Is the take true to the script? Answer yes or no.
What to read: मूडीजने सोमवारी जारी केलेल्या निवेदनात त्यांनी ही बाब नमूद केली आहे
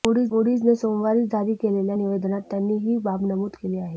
yes